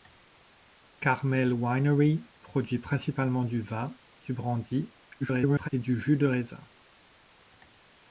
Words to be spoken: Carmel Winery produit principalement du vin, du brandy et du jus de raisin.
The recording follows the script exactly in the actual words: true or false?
false